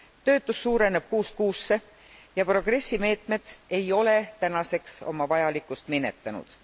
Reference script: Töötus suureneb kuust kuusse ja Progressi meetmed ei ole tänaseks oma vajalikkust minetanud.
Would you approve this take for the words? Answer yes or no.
yes